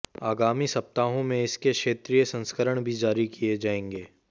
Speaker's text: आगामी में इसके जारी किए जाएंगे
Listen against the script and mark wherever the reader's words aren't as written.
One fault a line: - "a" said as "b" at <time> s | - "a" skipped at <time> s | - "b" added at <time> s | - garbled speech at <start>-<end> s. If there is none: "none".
- "सप्ताहों" added at 0.7 s
- "क्षेत्रीय संस्करण भी" added at 1.7 s